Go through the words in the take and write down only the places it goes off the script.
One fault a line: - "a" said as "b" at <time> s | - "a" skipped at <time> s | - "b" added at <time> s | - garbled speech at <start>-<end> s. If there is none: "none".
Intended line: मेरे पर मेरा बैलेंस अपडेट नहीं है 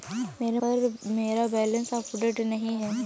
none